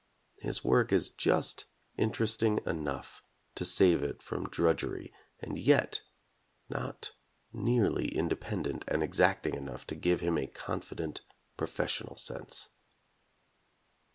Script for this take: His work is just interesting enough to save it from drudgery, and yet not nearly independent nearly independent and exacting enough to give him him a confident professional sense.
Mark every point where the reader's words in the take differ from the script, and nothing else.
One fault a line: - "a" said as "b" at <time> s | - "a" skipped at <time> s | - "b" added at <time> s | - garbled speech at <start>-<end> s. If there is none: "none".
- "nearly independent" skipped at 8.8 s
- "him" skipped at 10.4 s